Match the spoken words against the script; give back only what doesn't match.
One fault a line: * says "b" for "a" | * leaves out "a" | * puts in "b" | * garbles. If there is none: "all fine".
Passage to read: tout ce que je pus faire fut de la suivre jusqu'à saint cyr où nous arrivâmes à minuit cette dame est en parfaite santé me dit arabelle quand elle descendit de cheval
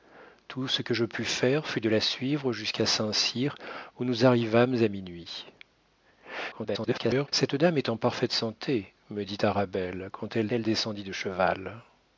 * garbles
* puts in "elle"